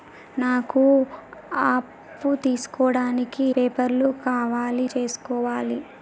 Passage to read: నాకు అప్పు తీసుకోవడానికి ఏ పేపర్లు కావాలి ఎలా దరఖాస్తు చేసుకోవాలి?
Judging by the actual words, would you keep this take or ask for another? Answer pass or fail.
fail